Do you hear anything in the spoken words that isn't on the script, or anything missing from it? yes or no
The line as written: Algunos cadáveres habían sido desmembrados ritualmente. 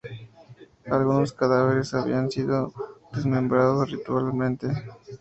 no